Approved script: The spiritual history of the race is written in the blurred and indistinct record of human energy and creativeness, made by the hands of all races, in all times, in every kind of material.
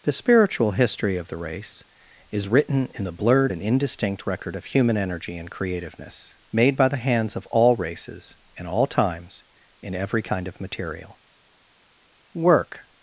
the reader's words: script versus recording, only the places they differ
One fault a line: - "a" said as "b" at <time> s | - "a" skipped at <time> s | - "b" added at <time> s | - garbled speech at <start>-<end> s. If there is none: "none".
- "Work" added at 12.3 s